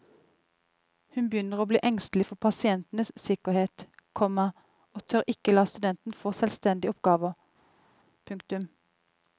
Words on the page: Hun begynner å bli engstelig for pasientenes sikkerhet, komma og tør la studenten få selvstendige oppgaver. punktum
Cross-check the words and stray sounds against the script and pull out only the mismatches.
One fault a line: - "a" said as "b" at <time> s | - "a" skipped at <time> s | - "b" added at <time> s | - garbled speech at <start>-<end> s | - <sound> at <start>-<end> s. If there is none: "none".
- "ikke" added at 5.3 s